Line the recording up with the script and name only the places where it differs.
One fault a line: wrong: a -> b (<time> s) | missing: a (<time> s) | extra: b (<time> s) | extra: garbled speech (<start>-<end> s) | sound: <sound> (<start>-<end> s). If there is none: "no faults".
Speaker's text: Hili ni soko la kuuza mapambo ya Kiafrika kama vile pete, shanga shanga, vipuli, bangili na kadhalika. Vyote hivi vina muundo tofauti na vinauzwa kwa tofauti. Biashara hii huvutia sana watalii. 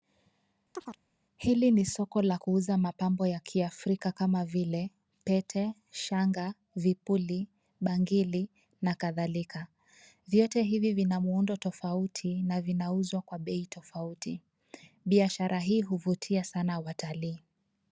sound: chirp (0.7-1.0 s)
missing: shanga (6.5 s)
extra: bei (13.4 s)